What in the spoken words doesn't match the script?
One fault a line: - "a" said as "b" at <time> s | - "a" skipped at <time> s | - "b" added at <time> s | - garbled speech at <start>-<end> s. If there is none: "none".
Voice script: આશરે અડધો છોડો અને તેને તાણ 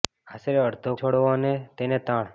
none